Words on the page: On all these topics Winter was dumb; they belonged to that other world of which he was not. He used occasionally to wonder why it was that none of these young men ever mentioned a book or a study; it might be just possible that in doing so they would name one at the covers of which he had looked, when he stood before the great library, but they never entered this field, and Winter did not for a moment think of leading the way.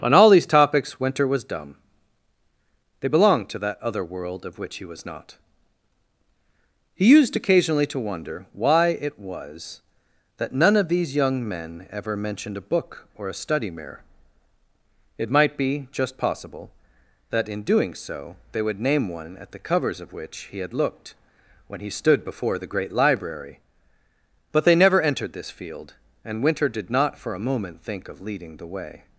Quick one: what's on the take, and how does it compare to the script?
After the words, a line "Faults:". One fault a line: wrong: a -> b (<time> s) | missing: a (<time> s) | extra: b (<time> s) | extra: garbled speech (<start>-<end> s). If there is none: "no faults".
On all these topics Winter was dumb; they belonged to that other world of which he was not. He used occasionally to wonder why it was that none of these young men ever mentioned a book or a study; mirror it might be just possible that in doing so they would name one at the covers of which he had looked, when he stood before the great library, but they never entered this field, and Winter did not for a moment think of leading the way.
Faults:
extra: mirror (13.7 s)